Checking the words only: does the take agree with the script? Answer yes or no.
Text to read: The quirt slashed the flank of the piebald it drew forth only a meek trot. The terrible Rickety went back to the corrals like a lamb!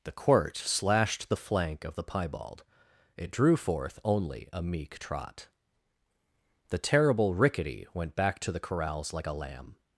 yes